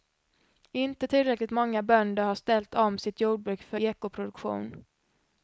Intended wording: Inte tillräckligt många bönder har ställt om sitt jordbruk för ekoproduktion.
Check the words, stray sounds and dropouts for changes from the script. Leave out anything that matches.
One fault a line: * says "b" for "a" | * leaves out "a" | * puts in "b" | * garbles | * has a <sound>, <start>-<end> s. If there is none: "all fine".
all fine